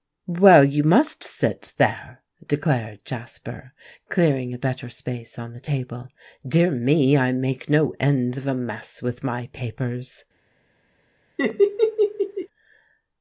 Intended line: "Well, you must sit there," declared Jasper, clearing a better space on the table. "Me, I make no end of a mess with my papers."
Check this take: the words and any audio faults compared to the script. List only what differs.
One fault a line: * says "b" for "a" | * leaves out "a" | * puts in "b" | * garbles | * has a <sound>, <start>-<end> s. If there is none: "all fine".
* puts in "Dear"
* has a laugh, 11.4-12.5 s